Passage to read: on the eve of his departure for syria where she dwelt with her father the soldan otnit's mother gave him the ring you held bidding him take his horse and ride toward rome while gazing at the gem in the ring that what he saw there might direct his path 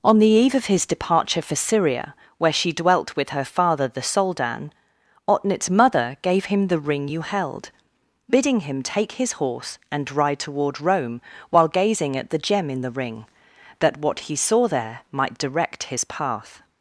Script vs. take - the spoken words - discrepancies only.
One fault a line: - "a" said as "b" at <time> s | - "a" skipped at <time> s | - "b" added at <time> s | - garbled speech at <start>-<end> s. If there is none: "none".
none